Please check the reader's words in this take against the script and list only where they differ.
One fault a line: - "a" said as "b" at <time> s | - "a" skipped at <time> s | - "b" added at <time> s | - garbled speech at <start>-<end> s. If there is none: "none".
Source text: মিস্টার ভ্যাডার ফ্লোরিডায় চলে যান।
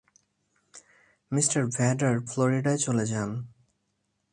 none